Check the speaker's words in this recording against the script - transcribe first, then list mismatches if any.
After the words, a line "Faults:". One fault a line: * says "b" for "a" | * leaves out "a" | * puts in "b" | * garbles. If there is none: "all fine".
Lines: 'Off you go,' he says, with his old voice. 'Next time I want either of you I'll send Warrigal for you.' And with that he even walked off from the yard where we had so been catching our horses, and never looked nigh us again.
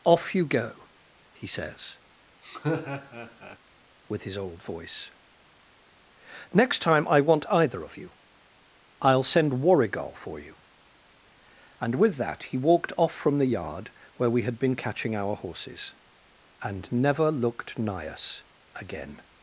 'Off you go,' he says, with his old voice. 'Next time I want either of you I'll send Warrigal for you.' And with that he walked off from the yard where we had been catching our horses, and never looked nigh us again.
Faults:
* leaves out "even"
* leaves out "so"